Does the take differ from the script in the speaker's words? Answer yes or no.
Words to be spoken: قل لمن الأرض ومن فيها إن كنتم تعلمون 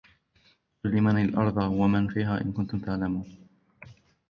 no